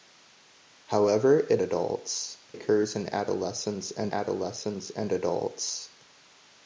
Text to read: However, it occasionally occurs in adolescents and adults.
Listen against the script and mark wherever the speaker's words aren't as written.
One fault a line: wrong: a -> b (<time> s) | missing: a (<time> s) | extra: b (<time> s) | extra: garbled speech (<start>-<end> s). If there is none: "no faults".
wrong: occasionally -> adults (1.6 s)
extra: adolescents and (4.1 s)